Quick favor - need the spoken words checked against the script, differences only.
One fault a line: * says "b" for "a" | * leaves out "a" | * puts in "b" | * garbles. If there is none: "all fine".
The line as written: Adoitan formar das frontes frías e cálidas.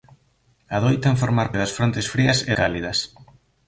all fine